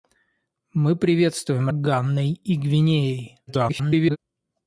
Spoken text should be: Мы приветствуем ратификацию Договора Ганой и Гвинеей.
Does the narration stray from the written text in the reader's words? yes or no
yes